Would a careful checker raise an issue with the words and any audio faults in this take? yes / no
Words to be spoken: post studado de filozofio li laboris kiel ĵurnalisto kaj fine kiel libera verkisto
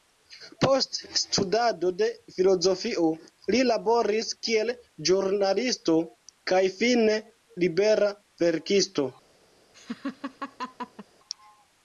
yes